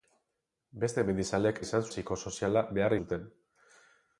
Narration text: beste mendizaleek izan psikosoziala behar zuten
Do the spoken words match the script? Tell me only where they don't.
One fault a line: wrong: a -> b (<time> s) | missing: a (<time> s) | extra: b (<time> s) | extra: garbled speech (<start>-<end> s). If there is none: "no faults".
no faults